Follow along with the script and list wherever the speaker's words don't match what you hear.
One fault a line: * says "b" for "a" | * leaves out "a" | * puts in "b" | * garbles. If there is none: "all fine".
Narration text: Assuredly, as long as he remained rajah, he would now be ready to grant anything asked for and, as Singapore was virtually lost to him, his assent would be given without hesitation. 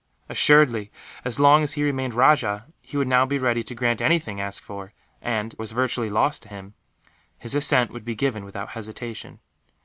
* leaves out "as Singapore"